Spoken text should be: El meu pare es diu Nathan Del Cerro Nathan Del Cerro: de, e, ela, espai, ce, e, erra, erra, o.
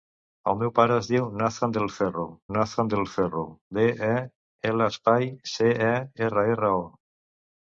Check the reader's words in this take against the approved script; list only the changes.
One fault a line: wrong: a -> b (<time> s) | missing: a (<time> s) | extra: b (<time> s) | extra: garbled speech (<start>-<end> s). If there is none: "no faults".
no faults